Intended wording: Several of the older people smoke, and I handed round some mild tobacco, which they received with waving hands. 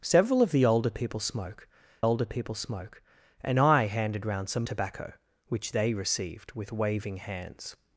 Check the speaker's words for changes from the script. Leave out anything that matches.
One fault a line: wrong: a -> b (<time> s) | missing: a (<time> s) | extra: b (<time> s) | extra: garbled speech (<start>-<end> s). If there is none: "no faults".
extra: older people smoke (2.0 s)
missing: mild (4.7 s)